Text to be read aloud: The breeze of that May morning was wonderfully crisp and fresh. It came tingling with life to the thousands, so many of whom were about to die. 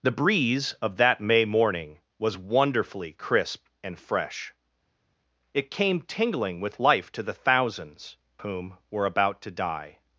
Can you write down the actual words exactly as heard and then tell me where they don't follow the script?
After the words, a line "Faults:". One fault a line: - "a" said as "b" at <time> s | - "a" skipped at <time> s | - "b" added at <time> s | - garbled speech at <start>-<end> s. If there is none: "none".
The breeze of that May morning was wonderfully crisp and fresh. It came tingling with life to the thousands, whom were about to die.
Faults:
- "so many of" skipped at 8.2 s